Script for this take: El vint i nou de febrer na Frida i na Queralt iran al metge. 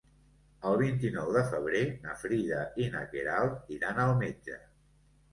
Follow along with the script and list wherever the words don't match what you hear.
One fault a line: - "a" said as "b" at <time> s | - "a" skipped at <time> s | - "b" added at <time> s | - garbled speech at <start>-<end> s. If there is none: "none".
none